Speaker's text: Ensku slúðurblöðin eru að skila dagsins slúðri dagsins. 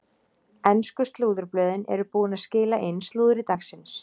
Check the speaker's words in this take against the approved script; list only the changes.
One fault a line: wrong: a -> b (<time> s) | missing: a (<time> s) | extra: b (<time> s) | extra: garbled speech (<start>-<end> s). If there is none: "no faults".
extra: búin (2.2 s)
wrong: dagsins -> inn (2.9 s)